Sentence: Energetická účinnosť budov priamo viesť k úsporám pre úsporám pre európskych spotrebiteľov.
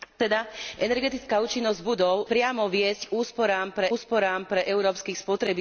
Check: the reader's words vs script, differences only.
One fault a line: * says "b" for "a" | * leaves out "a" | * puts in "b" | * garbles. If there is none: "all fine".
all fine